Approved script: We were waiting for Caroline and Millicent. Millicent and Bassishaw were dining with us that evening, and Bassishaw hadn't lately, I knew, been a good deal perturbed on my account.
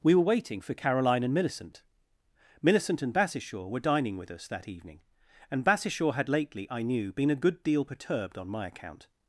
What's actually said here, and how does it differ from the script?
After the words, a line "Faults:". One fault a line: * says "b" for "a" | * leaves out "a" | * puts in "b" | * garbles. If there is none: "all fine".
We were waiting for Caroline and Millicent. Millicent and Bassishaw were dining with us that evening, and Bassishaw had lately, I knew, been a good deal perturbed on my account.
Faults:
* says "had" for "hadn't"